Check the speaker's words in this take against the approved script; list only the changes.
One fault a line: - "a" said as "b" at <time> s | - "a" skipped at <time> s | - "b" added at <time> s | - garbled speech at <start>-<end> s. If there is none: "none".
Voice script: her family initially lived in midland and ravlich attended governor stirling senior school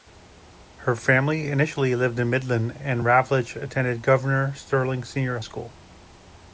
none